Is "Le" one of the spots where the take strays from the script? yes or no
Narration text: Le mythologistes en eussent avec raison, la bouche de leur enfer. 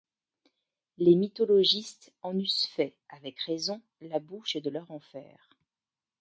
yes